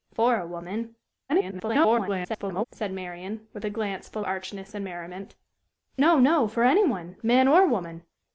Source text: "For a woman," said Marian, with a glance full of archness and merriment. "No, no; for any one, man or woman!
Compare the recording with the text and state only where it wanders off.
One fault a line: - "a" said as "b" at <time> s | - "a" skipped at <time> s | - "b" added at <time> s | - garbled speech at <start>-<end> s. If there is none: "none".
- garbled speech at 1.3-2.6 s
- "of" skipped at 4.2 s